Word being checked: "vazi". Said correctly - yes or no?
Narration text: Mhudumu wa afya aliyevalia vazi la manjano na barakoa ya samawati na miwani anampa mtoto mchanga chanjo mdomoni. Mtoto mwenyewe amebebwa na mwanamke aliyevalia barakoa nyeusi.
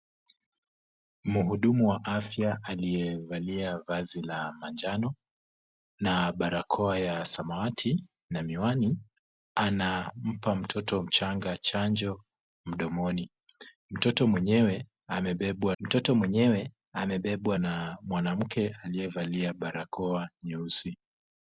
yes